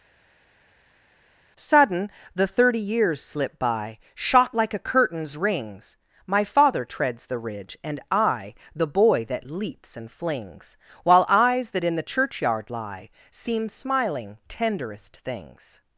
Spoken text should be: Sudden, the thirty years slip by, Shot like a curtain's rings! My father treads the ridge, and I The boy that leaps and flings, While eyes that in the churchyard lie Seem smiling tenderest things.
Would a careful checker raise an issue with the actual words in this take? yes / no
no